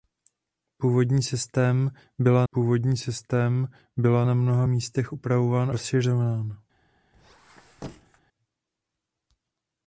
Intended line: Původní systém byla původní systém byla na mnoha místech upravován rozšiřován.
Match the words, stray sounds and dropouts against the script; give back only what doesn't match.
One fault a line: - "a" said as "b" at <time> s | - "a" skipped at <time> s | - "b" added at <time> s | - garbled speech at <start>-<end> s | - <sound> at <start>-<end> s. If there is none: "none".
- squeak at 7.1-8.2 s